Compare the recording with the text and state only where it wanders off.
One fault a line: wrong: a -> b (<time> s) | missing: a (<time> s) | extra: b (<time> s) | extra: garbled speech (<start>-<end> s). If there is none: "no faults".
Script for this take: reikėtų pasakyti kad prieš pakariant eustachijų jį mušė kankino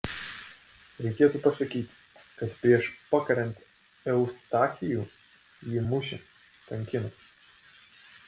no faults